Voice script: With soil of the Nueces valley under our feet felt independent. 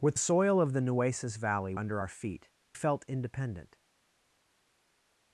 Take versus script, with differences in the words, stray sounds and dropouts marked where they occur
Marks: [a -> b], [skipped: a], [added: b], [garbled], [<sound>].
With soil of the Nueces valley under our feet felt independent.